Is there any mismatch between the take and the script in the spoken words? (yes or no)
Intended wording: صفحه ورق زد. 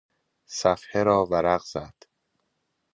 yes